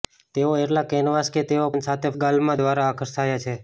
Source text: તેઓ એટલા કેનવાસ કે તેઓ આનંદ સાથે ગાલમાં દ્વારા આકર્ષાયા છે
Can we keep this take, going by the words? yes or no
yes